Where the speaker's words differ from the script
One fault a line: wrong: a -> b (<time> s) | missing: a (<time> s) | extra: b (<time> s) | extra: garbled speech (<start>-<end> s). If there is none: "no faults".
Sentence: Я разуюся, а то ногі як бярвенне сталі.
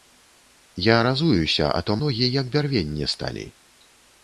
no faults